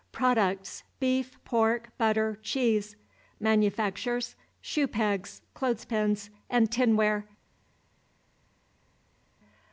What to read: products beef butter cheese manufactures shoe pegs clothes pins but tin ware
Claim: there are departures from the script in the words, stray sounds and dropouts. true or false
true